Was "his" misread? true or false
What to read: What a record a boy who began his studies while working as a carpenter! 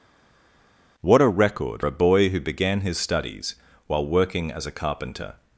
false